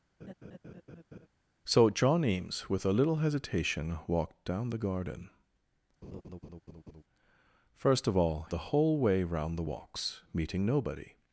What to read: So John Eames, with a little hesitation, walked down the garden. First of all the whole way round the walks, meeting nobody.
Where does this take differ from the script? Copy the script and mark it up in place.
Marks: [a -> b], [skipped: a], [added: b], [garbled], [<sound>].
[laugh] So John Eames, with a little hesitation, walked down the garden. [laugh] First of all the whole way round the walks, meeting nobody.